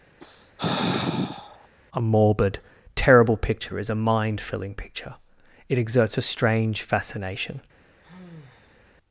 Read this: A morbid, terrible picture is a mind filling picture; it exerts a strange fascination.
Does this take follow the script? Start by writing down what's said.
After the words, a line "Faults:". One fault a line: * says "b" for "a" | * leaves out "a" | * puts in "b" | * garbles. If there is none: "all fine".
A morbid, terrible picture is a mind filling picture; it exerts a strange fascination.
Faults:
all fine